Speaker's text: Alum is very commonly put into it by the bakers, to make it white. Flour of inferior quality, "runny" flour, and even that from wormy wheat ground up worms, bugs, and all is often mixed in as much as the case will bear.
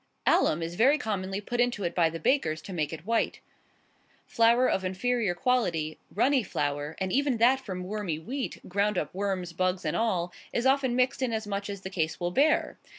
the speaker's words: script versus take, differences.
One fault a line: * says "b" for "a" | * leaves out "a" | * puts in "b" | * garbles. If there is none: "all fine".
all fine